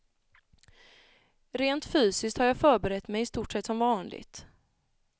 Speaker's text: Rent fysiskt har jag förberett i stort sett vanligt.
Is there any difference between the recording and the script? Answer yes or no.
yes